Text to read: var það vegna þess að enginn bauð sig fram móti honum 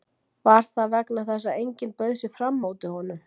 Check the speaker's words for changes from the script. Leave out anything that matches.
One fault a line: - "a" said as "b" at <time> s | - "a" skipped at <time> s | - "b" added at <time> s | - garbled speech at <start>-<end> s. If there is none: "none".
none